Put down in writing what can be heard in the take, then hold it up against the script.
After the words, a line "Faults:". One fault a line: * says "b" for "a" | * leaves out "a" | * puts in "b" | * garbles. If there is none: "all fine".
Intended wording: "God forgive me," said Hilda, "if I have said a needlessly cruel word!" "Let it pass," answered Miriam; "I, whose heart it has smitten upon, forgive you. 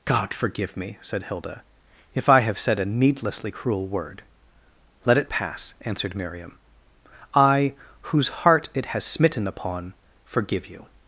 "God forgive me," said Hilda, "if I have said a needlessly cruel word!" "Let it pass," answered Miriam; "I, whose heart it has smitten upon, forgive you.
Faults:
all fine